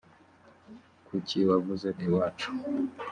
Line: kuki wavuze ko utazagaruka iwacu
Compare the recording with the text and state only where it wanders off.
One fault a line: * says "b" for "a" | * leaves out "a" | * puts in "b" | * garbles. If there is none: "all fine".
* leaves out "ko utazagaruka"